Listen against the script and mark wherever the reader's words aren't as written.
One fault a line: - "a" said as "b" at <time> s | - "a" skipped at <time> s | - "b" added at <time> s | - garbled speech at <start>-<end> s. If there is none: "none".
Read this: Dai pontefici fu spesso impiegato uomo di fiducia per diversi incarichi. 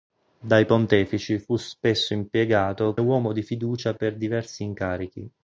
none